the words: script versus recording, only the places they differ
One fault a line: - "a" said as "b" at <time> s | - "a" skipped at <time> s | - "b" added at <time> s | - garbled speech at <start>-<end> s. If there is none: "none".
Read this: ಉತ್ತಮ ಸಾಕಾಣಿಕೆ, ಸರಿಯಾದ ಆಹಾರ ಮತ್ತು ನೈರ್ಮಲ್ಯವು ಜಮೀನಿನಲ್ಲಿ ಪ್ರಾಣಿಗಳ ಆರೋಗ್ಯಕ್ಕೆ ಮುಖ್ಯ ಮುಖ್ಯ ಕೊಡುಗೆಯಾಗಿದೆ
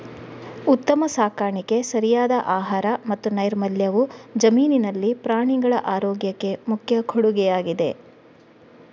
- "ಮುಖ್ಯ" skipped at 7.0 s